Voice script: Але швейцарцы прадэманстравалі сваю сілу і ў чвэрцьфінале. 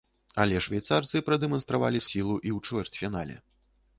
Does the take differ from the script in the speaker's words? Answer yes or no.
yes